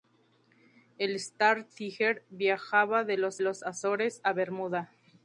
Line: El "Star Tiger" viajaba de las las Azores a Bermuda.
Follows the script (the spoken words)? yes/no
yes